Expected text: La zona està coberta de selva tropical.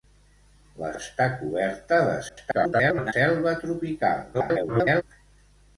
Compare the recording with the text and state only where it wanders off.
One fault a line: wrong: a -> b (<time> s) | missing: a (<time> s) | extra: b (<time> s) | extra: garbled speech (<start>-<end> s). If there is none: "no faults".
missing: zona (0.9 s)
extra: garbled speech (2.3-3.1 s)
extra: garbled speech (4.3-5.0 s)